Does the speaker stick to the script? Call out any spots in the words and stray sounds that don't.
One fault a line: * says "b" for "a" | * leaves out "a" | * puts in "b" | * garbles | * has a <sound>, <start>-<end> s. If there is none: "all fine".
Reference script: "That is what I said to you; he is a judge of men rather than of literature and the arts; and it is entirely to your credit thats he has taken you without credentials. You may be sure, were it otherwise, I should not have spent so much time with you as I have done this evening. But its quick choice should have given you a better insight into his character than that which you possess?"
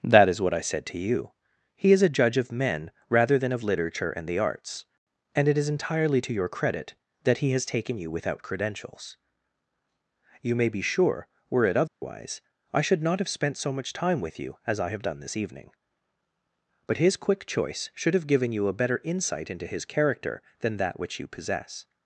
* says "that" for "thats"
* has a dropout, 11.9-12.0 s
* says "his" for "its"